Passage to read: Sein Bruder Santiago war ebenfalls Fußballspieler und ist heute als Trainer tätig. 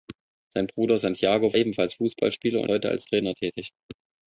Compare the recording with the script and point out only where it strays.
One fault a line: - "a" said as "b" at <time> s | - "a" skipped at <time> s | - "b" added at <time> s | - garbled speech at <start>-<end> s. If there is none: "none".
- "war" skipped at 1.5 s
- "ist" skipped at 2.7 s